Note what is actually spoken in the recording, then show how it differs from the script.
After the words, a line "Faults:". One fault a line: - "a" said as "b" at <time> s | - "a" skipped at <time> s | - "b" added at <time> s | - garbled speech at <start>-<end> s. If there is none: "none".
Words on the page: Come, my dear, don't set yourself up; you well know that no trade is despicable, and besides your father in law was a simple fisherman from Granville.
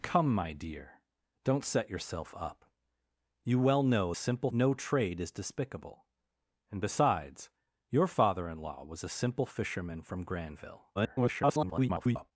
Come, my dear, don't set yourself up; you well know simple no trade is despicable, and besides your father in law was a simple fisherman from Granville. [garbled]
Faults:
- "that" said as "simple" at 4.1 s
- garbled speech at 10.9-12.3 s